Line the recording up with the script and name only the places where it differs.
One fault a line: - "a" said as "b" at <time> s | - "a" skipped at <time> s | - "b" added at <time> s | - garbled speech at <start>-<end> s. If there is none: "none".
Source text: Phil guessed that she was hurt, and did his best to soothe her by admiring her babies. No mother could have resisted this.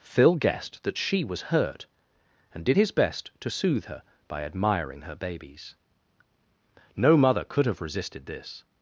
none